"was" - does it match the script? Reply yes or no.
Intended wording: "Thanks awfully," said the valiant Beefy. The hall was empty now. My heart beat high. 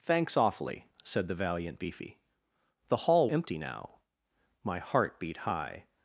no